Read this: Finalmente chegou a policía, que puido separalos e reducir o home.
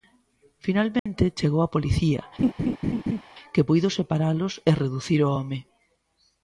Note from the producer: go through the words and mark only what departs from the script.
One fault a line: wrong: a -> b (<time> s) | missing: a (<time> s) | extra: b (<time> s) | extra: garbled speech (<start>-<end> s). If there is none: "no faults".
no faults